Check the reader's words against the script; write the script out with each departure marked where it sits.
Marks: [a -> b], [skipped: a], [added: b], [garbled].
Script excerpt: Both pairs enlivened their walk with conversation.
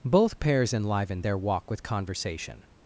Both pairs enlivened their walk with conversation.